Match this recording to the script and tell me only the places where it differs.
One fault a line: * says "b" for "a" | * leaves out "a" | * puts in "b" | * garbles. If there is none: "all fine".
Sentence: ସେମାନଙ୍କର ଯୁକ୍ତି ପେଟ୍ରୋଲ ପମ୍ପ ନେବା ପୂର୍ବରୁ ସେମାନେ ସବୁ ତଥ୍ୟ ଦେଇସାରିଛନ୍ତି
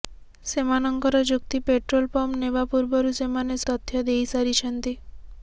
* leaves out "ସବୁ"